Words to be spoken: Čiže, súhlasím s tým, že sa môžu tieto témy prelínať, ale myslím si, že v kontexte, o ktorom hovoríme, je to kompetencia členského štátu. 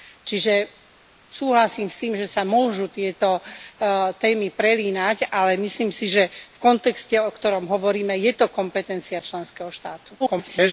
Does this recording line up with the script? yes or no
no